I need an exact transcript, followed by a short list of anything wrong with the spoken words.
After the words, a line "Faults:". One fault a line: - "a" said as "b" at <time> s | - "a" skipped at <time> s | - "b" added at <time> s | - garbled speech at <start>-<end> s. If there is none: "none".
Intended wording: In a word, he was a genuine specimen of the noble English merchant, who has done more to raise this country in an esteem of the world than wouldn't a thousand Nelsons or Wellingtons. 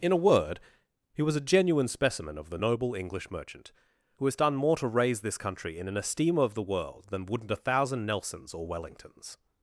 In a word, he was a genuine specimen of the noble English merchant, who has done more to raise this country in an esteem of the world than wouldn't a thousand Nelsons or Wellingtons.
Faults:
none